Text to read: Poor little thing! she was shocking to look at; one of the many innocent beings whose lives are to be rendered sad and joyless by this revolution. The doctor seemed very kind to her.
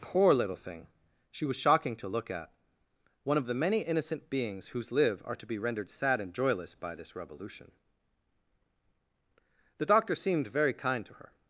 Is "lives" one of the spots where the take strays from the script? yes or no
yes